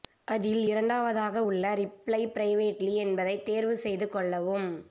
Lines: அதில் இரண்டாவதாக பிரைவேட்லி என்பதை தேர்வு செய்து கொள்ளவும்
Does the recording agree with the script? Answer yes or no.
no